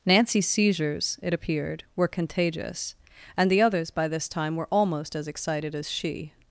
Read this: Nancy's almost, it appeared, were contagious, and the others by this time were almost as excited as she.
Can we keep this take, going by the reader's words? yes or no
no